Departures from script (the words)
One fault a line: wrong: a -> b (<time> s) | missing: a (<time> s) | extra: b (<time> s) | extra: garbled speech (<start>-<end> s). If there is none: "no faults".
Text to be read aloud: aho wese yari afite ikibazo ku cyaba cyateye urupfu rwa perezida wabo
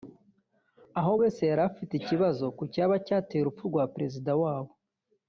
no faults